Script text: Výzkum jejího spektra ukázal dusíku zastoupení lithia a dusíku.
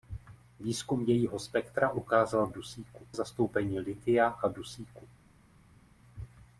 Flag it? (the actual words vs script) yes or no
no